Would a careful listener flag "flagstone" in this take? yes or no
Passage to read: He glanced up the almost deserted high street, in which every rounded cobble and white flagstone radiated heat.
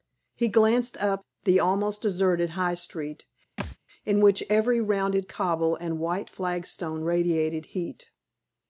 no